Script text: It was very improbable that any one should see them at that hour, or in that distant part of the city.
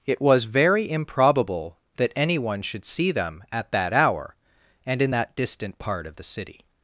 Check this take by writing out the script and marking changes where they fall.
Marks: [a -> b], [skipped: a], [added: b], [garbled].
It was very improbable that any one should see them at that hour, [or -> and] in that distant part of the city.